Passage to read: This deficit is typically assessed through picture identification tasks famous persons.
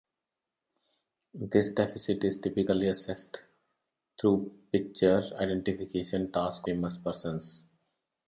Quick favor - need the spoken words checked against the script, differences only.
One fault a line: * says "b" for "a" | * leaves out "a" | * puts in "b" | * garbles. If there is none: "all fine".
all fine